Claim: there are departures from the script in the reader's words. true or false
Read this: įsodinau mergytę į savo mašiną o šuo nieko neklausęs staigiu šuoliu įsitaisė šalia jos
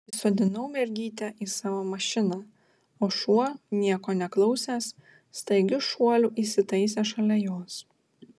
false